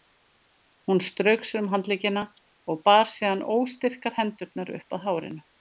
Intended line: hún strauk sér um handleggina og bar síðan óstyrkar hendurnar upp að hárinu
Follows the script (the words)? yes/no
yes